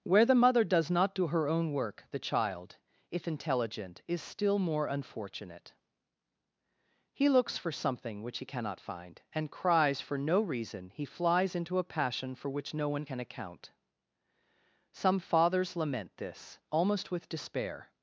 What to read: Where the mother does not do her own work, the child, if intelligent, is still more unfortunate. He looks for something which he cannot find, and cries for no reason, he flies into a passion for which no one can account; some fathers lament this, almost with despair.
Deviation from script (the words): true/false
false